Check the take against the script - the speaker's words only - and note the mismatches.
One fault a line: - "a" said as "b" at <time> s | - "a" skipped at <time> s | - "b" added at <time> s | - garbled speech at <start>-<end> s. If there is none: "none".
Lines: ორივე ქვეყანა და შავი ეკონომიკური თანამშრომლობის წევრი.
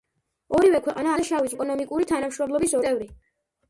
none